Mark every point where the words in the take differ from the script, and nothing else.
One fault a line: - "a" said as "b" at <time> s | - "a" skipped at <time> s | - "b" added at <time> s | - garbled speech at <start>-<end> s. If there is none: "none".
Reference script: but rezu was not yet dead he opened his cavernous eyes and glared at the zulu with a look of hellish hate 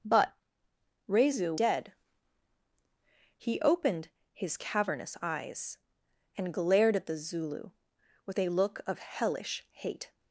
- "was not yet" skipped at 1.6 s